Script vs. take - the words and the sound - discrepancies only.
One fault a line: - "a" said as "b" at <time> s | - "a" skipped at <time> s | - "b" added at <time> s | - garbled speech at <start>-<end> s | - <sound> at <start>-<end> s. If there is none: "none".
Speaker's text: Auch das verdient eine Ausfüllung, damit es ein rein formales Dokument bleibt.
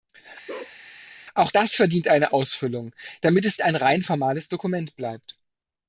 - bark at 0.5-0.8 s